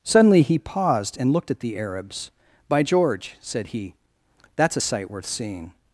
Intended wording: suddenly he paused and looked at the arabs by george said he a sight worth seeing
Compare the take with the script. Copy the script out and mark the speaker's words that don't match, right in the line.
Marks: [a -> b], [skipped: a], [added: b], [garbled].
suddenly he paused and looked at the arabs by george said he [added: that's] a sight worth seeing